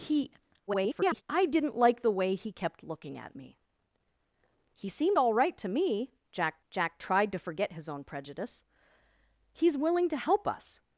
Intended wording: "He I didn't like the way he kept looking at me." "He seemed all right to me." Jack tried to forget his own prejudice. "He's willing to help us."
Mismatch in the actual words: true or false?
true